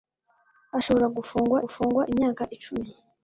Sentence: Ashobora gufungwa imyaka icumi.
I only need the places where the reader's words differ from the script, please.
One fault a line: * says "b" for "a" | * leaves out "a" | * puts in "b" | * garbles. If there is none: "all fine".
* puts in "gufungwa"